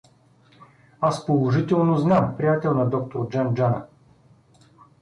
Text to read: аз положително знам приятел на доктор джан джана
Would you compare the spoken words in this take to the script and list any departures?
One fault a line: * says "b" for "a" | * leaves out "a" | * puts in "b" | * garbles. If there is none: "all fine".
all fine